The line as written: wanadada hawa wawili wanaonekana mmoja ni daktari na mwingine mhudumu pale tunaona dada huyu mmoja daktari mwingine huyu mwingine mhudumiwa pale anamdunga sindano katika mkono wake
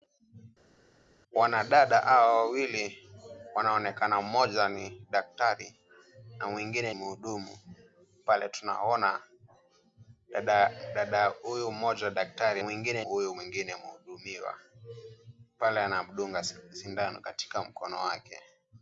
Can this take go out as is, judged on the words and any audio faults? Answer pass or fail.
pass